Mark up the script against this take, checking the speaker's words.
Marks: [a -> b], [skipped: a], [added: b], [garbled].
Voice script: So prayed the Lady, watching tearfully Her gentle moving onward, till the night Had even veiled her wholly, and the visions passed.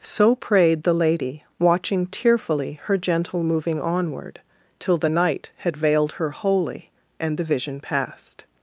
So prayed the Lady, watching tearfully Her gentle moving onward, till the night Had [skipped: even] veiled her wholly, and the [visions -> vision] passed.